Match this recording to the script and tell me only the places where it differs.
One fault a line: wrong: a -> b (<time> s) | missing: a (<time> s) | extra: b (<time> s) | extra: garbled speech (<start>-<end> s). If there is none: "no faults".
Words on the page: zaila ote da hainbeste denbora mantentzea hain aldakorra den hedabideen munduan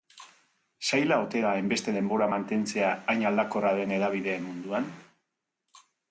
no faults